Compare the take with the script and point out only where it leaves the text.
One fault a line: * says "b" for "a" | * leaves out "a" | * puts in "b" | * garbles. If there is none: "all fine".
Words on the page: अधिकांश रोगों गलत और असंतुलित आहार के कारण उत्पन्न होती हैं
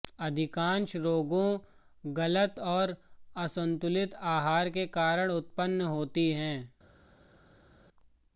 all fine